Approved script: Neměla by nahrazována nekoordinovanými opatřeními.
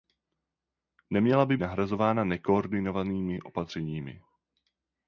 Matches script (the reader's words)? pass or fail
pass